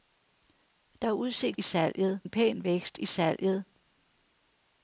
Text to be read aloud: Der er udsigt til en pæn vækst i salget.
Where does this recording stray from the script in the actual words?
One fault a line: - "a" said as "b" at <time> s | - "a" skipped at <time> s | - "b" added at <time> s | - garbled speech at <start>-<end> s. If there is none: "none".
- "til" said as "salget" at 1.6 s